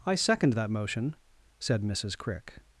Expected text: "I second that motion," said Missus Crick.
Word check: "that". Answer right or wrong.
right